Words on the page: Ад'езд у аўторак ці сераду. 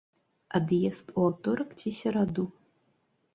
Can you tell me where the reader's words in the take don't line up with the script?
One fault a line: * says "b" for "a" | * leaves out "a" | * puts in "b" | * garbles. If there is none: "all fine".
all fine